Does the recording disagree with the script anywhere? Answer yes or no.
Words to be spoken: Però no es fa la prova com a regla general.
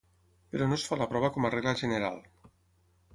no